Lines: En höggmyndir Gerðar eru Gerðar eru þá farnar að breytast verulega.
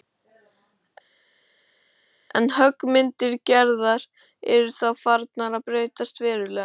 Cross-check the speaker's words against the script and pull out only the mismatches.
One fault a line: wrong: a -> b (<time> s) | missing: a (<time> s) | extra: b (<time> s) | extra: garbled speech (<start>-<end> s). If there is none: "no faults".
missing: Gerðar eru (4.7 s)